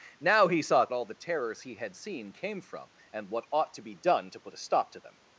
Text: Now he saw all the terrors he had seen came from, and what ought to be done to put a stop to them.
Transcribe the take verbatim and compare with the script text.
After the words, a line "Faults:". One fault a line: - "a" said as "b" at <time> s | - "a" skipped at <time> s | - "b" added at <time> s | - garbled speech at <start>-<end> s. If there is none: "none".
Now he saw all the terrors he had seen came from, and what ought to be done to put a stop to them.
Faults:
none